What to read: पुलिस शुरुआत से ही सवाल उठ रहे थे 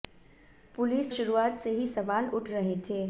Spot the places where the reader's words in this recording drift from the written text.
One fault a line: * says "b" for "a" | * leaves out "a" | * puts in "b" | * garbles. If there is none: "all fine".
all fine